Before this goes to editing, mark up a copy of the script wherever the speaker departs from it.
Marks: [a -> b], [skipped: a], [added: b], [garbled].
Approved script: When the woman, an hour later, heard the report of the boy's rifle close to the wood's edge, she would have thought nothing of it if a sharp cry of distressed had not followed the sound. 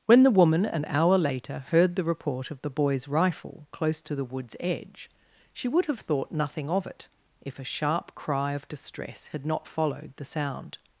When the woman, an hour later, heard the report of the boy's rifle close to the wood's edge, she would have thought nothing of it if a sharp cry of [distressed -> distress] had not followed the sound.